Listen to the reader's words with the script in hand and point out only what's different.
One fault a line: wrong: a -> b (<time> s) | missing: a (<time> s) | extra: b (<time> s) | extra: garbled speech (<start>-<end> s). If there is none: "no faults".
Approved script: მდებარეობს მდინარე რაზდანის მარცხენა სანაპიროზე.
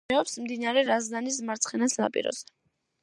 no faults